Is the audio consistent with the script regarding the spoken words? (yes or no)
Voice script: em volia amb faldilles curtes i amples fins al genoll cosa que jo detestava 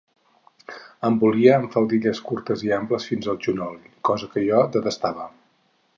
yes